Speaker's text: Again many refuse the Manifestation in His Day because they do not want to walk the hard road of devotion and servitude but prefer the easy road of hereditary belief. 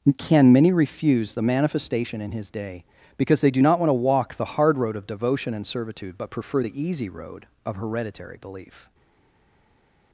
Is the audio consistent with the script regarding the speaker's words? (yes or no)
no